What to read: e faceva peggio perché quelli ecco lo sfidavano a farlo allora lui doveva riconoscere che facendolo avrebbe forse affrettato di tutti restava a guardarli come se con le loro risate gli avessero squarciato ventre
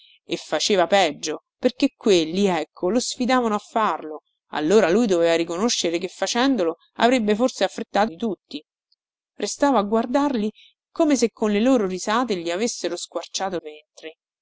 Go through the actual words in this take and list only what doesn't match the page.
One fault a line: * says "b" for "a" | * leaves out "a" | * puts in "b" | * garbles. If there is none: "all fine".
all fine